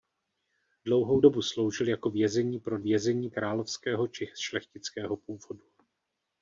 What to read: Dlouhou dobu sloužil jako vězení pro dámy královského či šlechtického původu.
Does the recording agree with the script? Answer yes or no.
no